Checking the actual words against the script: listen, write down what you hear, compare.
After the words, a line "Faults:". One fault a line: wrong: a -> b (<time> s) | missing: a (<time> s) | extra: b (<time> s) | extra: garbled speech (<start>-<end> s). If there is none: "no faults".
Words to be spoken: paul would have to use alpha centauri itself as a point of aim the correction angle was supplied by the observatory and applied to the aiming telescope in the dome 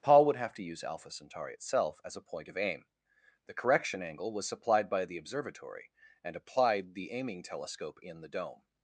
paul would have to use alpha centauri itself as a point of aim the correction angle was supplied by the observatory and applied the aiming telescope in the dome
Faults:
missing: to (6.9 s)